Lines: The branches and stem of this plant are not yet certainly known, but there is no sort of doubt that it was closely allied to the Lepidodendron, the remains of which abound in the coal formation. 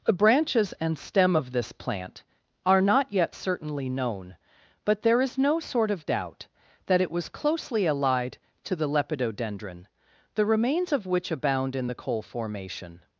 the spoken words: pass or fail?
pass